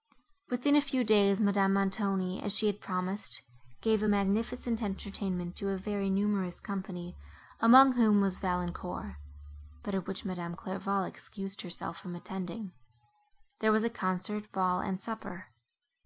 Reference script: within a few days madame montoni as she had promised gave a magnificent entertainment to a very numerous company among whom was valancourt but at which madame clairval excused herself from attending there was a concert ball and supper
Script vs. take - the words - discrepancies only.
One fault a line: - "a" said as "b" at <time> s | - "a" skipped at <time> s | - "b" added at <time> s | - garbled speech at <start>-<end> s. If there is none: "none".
none